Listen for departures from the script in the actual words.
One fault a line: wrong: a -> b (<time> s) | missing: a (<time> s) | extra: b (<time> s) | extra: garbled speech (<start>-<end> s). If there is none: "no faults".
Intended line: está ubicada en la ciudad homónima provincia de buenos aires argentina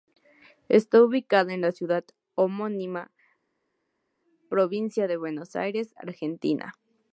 no faults